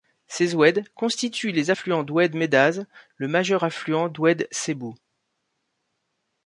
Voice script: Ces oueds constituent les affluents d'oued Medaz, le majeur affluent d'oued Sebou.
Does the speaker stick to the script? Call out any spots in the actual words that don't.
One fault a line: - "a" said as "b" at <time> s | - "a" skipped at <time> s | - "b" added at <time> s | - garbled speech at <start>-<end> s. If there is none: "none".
none